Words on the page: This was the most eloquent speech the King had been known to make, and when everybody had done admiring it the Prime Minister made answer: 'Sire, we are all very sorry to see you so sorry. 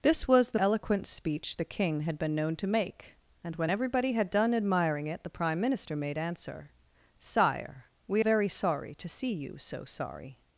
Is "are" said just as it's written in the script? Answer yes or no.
no